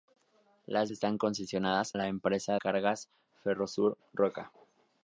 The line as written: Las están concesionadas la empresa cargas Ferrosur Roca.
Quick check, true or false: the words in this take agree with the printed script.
true